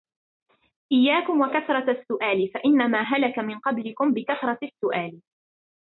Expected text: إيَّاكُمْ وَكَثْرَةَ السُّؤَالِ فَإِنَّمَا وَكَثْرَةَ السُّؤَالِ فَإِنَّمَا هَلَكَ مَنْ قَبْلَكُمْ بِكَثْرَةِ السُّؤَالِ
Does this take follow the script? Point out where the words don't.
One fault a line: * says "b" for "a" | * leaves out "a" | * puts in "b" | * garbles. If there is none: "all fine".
* leaves out "وَكَثْرَةَ السُّؤَالِ فَإِنَّمَا"